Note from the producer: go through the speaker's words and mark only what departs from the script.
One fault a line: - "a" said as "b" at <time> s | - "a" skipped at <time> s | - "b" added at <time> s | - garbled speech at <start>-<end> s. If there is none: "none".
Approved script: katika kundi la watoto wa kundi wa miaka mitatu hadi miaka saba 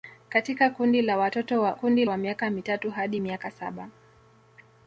none